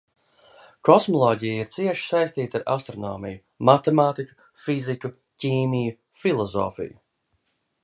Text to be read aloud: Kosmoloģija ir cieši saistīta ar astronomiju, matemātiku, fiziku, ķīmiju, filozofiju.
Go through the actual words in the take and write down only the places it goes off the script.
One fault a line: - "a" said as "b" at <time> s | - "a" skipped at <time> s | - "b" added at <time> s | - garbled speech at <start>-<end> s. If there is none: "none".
none